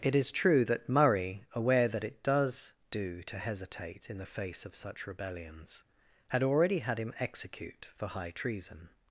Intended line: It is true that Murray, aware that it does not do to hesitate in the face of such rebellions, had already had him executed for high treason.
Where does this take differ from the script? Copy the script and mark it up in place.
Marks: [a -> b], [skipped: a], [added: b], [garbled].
It is true that Murray, aware that it does [skipped: not] do to hesitate in the face of such rebellions, had already had him [executed -> execute] for high treason.